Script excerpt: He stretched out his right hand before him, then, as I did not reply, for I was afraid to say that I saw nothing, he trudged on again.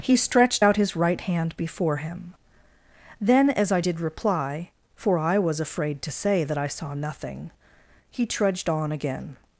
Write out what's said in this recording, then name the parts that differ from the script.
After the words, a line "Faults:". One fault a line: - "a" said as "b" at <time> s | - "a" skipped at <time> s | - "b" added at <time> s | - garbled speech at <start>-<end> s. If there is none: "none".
He stretched out his right hand before him, then, as I did reply, for I was afraid to say that I saw nothing, he trudged on again.
Faults:
- "not" skipped at 4.0 s